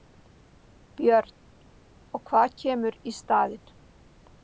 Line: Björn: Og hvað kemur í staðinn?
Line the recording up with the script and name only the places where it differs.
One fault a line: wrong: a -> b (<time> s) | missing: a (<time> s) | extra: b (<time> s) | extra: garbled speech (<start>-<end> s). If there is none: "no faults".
no faults